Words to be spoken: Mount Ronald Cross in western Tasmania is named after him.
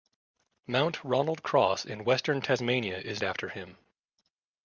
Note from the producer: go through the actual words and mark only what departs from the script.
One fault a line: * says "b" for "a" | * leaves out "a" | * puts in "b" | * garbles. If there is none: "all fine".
* leaves out "named"